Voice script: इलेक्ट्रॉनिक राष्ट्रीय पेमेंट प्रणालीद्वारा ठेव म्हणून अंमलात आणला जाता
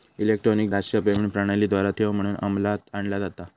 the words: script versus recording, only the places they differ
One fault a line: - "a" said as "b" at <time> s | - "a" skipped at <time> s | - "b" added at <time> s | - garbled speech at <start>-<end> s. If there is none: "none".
none